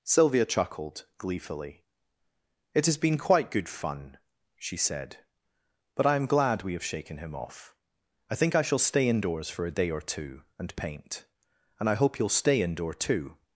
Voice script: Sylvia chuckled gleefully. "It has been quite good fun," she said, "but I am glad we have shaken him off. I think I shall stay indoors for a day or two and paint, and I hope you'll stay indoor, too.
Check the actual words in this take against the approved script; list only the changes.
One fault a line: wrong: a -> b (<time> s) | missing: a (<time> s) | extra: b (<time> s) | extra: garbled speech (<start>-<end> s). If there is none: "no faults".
no faults